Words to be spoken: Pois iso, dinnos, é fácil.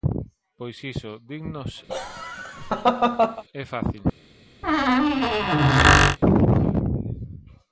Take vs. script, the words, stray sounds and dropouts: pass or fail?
fail